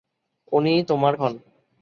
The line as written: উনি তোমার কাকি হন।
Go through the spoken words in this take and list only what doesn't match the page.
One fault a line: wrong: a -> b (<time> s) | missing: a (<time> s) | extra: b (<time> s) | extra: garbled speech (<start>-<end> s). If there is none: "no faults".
missing: কাকি (1.1 s)